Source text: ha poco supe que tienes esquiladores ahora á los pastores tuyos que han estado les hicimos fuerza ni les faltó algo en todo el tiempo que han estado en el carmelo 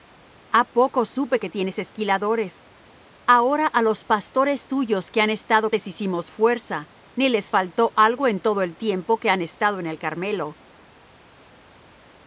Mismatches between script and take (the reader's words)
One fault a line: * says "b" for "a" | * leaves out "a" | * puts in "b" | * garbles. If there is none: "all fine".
all fine